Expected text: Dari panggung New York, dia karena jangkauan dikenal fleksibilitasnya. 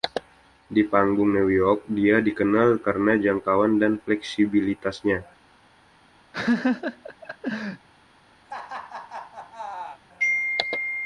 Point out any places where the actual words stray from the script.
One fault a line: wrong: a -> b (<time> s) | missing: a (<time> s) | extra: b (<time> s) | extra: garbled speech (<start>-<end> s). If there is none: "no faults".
wrong: Dari -> Di (0.7 s)
extra: dikenal (2.2 s)
wrong: dikenal -> dan (3.8 s)